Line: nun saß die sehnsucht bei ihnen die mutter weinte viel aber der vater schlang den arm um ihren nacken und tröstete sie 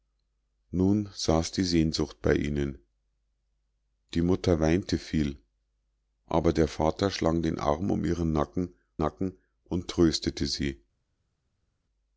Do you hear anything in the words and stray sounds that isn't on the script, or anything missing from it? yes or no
yes